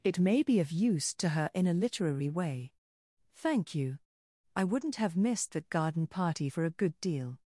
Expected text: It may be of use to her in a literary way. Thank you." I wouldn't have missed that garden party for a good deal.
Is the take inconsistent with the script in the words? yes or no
no